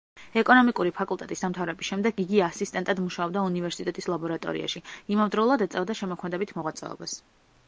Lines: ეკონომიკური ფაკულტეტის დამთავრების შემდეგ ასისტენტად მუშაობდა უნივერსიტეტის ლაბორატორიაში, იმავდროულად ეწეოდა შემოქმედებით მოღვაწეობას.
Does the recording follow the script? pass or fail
fail